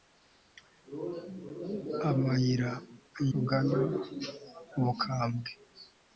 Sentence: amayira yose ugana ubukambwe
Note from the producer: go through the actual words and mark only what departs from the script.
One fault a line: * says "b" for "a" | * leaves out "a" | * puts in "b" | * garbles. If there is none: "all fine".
* leaves out "yose"